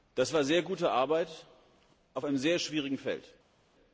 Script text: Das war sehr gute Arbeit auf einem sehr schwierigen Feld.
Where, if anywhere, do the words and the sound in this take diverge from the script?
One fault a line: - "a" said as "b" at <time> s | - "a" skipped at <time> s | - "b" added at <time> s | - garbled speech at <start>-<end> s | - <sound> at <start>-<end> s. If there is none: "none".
none